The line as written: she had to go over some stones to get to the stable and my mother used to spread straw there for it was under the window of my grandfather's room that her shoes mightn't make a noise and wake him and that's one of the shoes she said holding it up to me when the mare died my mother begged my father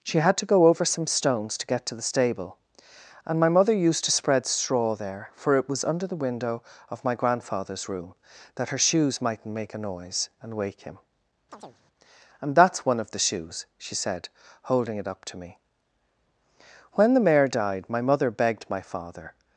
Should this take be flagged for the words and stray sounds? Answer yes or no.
yes